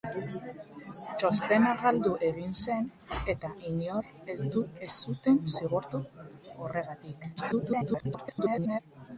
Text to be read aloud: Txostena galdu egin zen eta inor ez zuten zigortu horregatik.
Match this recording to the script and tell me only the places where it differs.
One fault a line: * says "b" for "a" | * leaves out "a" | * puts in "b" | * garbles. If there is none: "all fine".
* garbles